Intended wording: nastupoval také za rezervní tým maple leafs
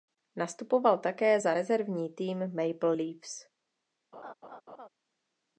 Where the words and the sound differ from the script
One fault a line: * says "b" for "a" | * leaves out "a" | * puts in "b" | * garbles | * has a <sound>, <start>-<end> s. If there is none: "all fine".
* has a laugh, 4.1-4.9 s